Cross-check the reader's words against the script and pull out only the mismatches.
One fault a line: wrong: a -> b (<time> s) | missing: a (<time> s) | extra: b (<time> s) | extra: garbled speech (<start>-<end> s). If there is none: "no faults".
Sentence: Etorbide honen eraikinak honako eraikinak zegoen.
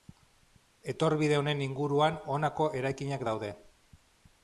wrong: eraikinak -> inguruan (1.6 s)
wrong: zegoen -> daude (3.3 s)